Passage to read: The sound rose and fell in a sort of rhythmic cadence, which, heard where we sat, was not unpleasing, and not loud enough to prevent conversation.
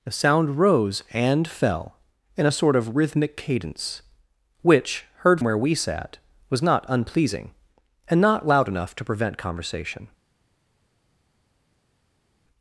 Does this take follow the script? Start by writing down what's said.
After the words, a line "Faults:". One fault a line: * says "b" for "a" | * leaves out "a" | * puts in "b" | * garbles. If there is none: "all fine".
The sound rose and fell in a sort of rhythmic cadence, which, heard where we sat, was not unpleasing, and not loud enough to prevent conversation.
Faults:
all fine